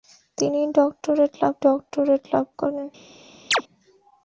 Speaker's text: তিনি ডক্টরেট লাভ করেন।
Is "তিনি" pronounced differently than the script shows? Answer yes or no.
no